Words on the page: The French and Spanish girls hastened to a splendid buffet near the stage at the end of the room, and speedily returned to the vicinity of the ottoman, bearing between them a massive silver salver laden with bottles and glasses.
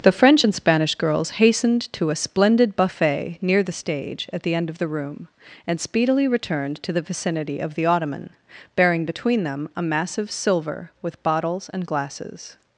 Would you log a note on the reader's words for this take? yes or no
yes